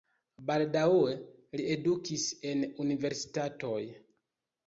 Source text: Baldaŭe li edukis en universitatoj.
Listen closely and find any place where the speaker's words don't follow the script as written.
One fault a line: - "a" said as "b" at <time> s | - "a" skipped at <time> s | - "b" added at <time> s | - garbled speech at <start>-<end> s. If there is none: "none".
none